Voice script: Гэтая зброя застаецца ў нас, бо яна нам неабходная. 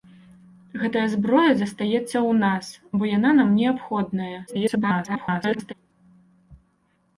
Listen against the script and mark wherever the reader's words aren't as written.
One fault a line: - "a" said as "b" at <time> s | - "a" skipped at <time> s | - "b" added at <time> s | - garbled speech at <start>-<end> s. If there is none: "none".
- garbled speech at 4.5-5.7 s